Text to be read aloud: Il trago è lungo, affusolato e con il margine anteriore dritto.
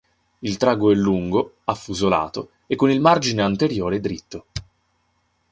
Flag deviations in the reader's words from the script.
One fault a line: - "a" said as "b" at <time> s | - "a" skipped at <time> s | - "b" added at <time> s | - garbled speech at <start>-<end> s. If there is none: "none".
none